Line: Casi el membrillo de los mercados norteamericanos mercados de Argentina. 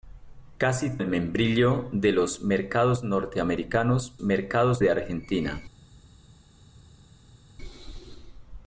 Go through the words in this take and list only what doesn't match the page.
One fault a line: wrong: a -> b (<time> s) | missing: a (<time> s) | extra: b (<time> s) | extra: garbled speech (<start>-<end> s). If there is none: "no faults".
no faults